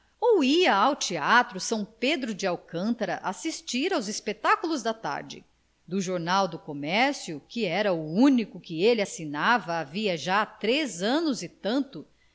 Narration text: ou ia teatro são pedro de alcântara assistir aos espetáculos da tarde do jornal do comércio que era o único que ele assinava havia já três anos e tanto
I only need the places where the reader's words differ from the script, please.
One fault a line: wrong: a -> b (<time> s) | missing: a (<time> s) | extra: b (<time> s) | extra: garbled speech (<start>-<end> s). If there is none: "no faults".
extra: ao (0.7 s)